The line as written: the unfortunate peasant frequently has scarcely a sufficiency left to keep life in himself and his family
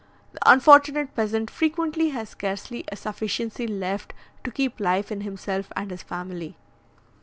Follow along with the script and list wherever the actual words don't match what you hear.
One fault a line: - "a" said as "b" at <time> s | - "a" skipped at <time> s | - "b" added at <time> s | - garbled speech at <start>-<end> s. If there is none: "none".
none